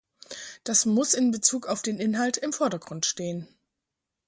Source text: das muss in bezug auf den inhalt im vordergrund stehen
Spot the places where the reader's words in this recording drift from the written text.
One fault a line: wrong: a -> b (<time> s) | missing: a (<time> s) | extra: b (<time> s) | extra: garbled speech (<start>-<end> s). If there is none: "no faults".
no faults